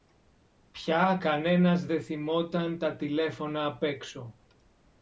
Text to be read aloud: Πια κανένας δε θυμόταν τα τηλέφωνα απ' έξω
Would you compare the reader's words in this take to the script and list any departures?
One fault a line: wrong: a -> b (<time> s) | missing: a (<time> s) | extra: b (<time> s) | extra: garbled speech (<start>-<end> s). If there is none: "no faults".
no faults